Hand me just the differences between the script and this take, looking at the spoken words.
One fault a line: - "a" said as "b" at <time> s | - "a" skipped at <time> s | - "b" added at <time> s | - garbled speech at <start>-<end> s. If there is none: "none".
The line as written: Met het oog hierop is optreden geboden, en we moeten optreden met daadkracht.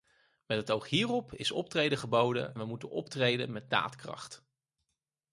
- "en" skipped at 2.6 s